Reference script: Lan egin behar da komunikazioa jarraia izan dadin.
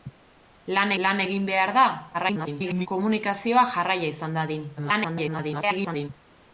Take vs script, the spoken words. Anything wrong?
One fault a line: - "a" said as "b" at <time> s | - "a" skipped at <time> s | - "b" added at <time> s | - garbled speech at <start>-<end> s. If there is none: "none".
- "lan" added at 1.1 s
- garbled speech at 2.1-2.9 s
- garbled speech at 4.8-6.1 s